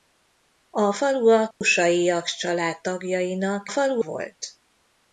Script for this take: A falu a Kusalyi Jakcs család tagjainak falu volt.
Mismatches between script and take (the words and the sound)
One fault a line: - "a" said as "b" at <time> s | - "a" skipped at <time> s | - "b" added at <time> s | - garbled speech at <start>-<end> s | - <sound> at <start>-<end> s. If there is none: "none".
- dropout at 1.5-1.6 s